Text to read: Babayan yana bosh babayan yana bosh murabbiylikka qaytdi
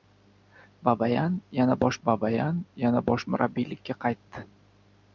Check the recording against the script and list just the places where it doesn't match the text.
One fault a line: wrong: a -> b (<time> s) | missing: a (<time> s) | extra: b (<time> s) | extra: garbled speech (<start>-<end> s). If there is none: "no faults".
no faults